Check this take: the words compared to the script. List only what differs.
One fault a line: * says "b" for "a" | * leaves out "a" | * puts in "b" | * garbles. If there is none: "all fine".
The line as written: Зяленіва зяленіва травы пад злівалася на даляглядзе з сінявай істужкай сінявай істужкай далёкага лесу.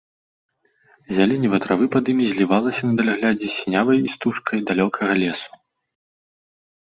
* leaves out "зяленіва"
* puts in "імі"
* leaves out "сінявай істужкай"